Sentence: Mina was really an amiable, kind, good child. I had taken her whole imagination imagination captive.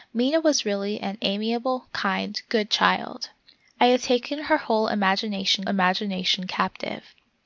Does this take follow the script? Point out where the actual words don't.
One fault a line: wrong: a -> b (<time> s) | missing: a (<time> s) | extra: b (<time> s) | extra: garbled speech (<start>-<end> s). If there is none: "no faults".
no faults